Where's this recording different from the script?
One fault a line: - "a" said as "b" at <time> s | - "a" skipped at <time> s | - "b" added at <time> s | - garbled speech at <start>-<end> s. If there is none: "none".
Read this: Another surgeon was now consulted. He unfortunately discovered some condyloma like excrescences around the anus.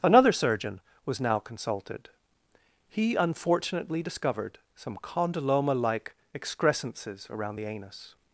none